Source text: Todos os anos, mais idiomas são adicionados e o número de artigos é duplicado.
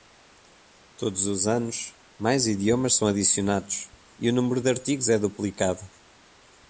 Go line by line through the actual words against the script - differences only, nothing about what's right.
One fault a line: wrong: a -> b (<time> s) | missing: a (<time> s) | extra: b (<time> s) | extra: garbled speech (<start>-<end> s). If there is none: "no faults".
no faults